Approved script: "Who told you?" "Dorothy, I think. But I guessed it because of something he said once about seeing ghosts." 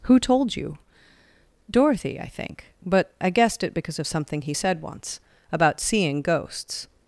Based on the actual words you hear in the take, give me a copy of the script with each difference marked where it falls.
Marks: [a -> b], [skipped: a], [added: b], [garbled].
"Who told you?" "Dorothy, I think. But I guessed it because of something he said once about seeing ghosts."